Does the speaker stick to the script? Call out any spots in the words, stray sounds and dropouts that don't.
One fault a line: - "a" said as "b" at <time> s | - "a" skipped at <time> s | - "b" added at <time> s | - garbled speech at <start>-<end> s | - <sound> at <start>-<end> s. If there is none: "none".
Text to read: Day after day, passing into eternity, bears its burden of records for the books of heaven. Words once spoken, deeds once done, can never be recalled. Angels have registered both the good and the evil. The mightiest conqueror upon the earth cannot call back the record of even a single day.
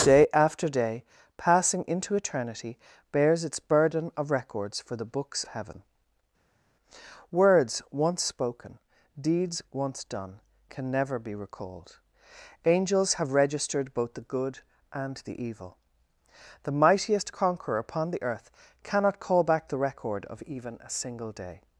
- "of" skipped at 5.4 s